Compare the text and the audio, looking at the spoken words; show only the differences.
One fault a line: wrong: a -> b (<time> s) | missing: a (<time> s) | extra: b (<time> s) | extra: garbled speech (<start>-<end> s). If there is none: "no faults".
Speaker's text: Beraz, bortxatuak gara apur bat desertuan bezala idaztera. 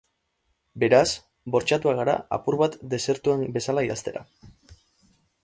no faults